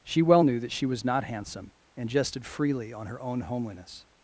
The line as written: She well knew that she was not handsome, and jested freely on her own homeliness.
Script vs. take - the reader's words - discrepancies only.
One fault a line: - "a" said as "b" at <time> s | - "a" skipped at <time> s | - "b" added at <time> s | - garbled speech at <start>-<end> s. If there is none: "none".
none